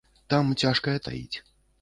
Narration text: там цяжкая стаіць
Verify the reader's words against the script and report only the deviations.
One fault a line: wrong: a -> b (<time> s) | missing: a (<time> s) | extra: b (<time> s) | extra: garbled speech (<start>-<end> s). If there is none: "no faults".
no faults